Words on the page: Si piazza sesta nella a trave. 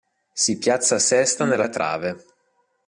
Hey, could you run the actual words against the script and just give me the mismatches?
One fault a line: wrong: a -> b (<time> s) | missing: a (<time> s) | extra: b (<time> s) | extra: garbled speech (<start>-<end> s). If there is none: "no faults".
no faults